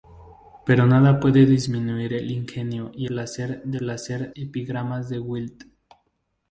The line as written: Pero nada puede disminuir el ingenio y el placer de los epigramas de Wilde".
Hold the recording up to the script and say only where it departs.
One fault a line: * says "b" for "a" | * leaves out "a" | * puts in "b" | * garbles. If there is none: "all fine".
* leaves out "el"
* says "placer" for "los"